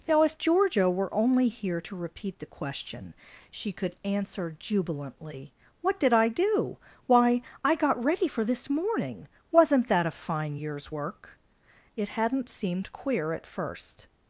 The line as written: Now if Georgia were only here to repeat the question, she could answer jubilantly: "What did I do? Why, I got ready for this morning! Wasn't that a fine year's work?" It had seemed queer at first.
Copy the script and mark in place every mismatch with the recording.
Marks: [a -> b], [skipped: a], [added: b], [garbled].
Now if Georgia were only here to repeat the question, she could answer jubilantly: "What did I do? Why, I got ready for this morning! Wasn't that a fine year's work?" It [had -> hadn't] seemed queer at first.